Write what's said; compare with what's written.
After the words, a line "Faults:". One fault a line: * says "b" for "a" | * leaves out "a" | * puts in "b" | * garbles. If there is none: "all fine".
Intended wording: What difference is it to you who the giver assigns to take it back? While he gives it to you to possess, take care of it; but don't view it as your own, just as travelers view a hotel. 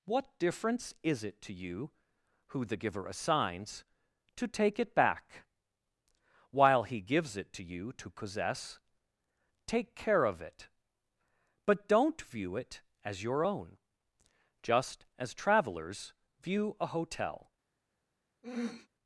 What difference is it to you who the giver assigns to take it back? While he gives it to you to possess, take care of it; but don't view it as your own, just as travelers view a hotel.
Faults:
all fine